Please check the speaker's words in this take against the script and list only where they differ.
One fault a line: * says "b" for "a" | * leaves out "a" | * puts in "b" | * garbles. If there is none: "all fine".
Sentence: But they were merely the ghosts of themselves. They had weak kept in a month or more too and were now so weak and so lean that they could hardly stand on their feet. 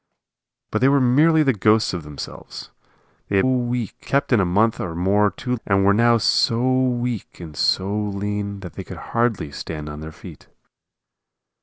all fine